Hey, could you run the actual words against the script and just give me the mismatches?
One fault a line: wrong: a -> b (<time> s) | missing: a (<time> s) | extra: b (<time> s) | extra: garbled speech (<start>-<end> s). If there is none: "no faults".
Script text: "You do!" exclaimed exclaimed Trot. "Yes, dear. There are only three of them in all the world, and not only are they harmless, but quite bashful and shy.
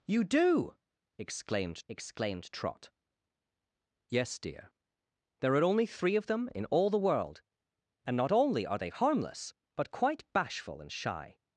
no faults